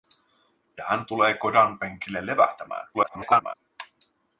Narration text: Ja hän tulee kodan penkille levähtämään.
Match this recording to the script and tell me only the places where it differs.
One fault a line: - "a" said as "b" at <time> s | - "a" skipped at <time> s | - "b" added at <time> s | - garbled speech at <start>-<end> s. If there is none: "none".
- garbled speech at 2.9-3.5 s